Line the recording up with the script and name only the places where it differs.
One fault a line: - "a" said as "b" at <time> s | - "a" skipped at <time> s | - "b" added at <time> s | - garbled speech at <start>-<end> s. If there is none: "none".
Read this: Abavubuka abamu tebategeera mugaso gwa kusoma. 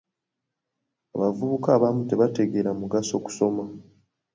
- "gwa" skipped at 3.1 s